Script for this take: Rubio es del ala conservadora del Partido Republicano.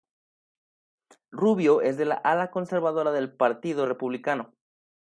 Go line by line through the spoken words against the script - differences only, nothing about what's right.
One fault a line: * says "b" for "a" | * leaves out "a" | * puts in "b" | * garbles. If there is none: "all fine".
all fine